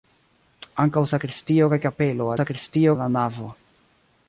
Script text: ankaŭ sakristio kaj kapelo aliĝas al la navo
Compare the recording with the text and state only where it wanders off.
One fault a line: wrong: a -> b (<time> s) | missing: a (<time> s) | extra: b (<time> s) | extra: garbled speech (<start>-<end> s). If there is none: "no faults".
wrong: aliĝas -> sakristio (2.4 s)